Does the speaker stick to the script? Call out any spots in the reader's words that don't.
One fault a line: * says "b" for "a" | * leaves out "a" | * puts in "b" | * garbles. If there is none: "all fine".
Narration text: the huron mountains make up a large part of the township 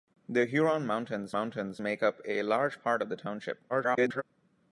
* puts in "mountains"
* garbles